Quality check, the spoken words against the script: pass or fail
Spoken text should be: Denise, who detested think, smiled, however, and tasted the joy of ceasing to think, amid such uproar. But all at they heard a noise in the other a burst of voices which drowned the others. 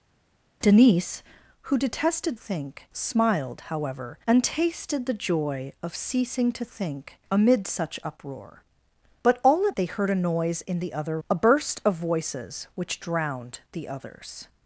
pass